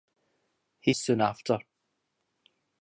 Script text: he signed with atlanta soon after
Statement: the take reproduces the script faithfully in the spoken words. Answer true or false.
false